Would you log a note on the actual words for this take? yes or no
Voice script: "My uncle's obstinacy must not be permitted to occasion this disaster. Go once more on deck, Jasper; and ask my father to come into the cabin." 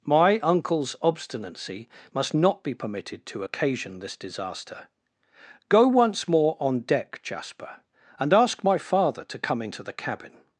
no